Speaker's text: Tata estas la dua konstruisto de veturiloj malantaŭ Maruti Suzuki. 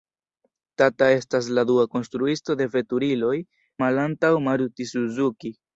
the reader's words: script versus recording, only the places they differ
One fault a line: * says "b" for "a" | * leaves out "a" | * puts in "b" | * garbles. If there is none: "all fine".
all fine